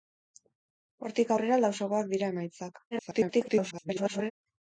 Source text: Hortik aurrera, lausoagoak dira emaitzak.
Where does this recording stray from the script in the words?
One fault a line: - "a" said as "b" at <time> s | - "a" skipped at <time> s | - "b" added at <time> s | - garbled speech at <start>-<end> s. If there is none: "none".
- garbled speech at 2.9-4.3 s